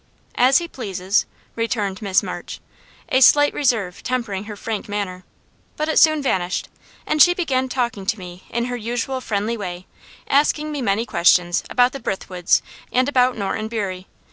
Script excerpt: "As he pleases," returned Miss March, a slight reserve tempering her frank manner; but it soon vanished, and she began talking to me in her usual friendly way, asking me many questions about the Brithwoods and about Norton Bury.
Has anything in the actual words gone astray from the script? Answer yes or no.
no